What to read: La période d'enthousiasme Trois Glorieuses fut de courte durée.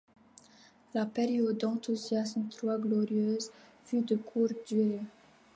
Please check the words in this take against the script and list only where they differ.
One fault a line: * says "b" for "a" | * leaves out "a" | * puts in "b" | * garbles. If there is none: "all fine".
all fine